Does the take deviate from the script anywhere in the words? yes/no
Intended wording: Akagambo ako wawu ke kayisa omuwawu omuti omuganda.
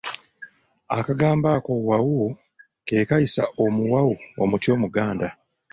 no